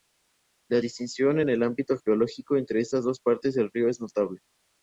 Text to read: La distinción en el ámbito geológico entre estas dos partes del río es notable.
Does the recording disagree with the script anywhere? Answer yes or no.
no